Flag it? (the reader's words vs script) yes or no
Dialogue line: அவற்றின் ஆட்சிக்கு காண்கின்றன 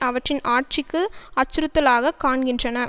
yes